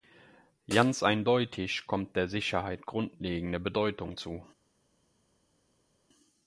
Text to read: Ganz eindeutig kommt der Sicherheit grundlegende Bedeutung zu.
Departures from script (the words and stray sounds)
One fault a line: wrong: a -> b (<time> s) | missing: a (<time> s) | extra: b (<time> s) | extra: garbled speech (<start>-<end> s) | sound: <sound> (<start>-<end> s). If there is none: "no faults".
no faults